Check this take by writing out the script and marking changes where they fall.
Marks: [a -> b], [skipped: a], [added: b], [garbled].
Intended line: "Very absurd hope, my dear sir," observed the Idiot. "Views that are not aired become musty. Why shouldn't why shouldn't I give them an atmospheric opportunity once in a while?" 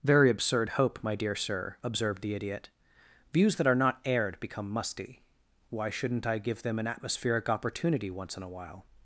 "Very absurd hope, my dear sir," observed the Idiot. "Views that are not aired become musty. Why shouldn't [skipped: why shouldn't] I give them an atmospheric opportunity once in a while?"